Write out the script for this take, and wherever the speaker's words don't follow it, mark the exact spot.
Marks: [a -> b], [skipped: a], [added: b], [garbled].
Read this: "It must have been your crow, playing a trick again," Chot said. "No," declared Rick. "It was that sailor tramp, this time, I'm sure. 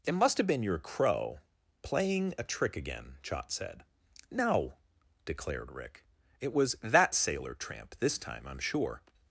"It must have been your crow, playing a trick again," Chot said. "No," declared Rick. "It was that sailor tramp, this time, I'm sure.